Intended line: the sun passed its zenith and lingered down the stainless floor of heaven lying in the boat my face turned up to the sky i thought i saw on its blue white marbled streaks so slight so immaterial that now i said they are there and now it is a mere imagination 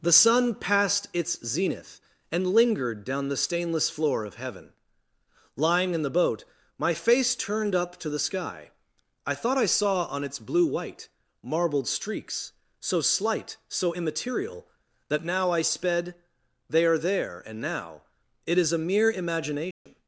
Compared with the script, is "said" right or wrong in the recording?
wrong